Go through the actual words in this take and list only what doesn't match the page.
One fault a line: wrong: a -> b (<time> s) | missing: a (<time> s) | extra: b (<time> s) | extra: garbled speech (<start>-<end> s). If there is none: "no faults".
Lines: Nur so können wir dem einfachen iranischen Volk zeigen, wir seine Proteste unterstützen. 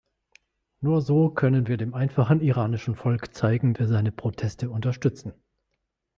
no faults